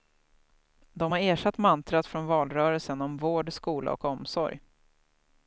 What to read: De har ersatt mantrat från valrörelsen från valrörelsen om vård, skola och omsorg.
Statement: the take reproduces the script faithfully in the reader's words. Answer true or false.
false